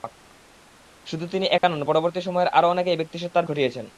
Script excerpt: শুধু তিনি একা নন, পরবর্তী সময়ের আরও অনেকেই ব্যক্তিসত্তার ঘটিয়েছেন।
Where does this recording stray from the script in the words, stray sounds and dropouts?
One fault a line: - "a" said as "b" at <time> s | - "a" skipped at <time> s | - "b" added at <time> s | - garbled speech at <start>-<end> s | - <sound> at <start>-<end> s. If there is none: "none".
- dropout at 1.6-1.6 s